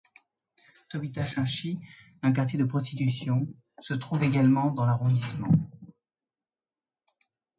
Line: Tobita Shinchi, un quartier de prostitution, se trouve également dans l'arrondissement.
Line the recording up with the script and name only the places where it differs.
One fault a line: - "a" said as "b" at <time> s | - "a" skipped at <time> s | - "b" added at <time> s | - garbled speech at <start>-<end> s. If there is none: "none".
none